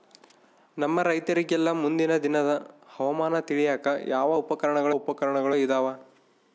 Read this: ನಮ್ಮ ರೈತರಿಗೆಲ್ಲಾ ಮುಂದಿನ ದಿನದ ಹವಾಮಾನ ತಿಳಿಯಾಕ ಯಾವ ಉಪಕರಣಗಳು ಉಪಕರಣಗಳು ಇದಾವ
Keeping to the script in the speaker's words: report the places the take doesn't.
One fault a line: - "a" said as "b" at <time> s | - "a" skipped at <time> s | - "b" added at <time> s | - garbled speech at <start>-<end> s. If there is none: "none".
none